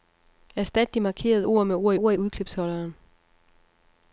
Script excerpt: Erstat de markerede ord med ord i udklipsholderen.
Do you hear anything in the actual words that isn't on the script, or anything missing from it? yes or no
yes